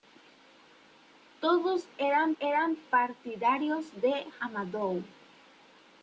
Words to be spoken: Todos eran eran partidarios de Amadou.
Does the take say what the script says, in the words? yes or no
yes